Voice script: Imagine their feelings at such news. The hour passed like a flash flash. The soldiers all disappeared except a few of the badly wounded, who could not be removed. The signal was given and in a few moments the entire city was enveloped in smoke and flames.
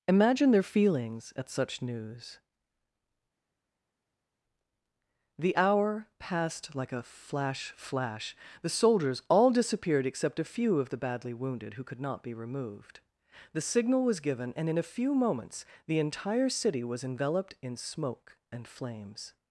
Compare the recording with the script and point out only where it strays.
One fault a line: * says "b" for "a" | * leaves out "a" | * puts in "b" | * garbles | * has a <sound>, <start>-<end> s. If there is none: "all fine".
all fine